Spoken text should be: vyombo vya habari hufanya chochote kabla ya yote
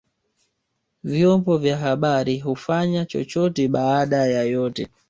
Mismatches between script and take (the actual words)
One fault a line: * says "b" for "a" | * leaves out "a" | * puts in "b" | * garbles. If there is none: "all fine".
* says "baada" for "kabla"